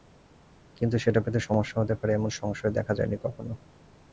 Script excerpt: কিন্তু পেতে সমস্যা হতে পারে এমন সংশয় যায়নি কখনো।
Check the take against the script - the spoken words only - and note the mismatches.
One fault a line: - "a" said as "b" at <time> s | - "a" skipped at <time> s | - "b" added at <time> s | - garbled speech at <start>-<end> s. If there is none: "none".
- "সেটা" added at 1.0 s
- "দেখা" added at 2.7 s